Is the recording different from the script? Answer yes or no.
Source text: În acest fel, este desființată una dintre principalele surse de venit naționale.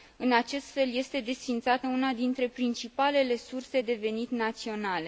no